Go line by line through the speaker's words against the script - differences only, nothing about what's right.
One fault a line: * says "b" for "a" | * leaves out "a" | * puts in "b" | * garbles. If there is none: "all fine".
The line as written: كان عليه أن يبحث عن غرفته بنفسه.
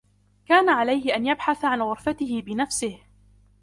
all fine